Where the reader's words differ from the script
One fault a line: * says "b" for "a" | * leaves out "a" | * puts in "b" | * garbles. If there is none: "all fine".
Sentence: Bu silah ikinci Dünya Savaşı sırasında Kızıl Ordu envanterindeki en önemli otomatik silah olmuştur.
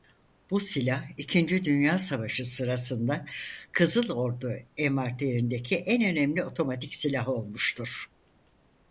all fine